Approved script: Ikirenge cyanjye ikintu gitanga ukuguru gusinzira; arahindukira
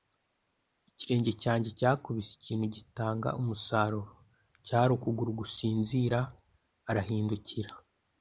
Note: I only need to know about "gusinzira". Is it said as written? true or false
true